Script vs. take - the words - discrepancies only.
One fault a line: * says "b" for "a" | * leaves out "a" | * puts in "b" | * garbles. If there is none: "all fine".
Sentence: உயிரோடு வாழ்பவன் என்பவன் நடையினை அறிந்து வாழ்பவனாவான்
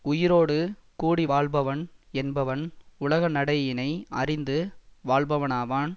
* puts in "கூடி"
* puts in "உலக"